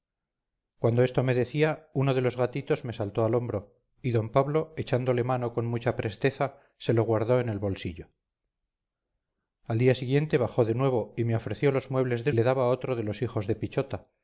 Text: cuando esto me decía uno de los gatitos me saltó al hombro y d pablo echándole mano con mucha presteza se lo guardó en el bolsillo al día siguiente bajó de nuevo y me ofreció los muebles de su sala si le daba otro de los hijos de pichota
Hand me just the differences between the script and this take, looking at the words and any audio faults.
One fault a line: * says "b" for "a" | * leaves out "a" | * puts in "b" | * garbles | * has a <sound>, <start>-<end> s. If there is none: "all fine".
* leaves out "su sala si"